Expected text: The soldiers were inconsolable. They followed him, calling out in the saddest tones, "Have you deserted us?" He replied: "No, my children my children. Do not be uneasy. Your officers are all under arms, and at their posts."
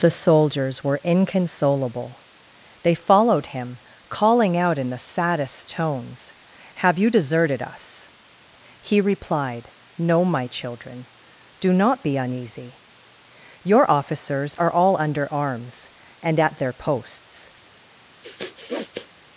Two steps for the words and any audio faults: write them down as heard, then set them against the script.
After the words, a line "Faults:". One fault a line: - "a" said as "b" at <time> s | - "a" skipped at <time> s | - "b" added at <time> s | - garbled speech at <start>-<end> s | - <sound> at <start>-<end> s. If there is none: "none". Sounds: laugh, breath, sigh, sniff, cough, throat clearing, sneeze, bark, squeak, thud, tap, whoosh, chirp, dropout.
The soldiers were inconsolable. They followed him, calling out in the saddest tones, "Have you deserted us?" He replied: "No, my children. Do not be uneasy. Your officers are all under arms, and at their posts."
Faults:
- "my children" skipped at 11.1 s
- sniff at 18.2-19.1 s